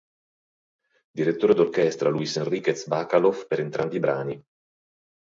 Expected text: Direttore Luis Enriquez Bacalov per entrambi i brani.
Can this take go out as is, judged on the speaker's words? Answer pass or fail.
fail